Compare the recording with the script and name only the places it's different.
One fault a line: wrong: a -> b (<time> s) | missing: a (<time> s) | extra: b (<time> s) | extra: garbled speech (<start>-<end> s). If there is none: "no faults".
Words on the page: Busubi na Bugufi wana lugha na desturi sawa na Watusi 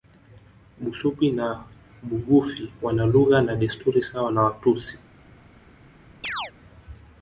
no faults